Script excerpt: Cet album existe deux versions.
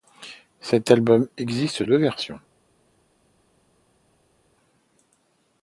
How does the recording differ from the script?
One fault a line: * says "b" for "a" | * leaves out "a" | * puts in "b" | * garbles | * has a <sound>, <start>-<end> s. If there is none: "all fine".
all fine